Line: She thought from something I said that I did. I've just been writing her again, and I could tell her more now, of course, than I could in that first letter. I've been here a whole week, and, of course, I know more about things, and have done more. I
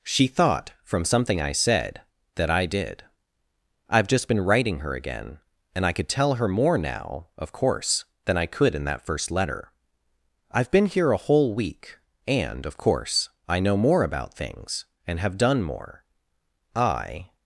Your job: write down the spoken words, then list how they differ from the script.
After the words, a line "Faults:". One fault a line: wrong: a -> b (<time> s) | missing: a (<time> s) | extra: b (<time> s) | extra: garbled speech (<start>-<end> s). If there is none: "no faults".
She thought from something I said that I did. I've just been writing her again, and I could tell her more now, of course, than I could in that first letter. I've been here a whole week, and, of course, I know more about things, and have done more. I
Faults:
no faults